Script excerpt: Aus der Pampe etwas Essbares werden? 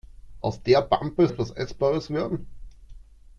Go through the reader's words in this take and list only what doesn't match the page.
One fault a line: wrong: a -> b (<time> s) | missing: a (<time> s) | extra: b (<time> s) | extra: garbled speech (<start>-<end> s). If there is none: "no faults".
no faults